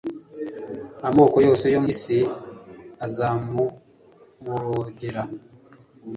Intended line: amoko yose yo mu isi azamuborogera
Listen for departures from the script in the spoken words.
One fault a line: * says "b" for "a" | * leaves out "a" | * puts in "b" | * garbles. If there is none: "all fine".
* leaves out "mu"